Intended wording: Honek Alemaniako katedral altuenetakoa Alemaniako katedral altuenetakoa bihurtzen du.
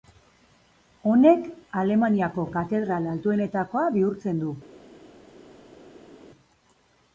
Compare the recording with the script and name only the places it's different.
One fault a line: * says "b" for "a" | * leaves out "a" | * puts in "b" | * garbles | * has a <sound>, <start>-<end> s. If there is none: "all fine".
* leaves out "Alemaniako katedral altuenetakoa"